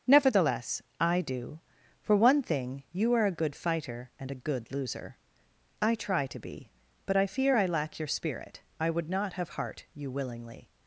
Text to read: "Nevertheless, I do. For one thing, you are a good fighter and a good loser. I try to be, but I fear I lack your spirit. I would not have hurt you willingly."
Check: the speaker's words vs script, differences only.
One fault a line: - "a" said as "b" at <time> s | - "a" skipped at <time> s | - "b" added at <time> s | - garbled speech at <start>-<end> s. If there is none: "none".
- "hurt" said as "heart" at 9.5 s